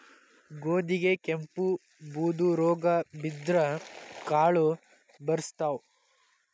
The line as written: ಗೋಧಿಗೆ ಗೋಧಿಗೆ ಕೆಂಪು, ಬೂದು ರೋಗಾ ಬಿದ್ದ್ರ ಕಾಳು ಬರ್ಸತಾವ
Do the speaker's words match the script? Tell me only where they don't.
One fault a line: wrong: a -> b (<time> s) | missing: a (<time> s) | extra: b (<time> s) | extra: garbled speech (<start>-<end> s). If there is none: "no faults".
missing: ಗೋಧಿಗೆ (1.1 s)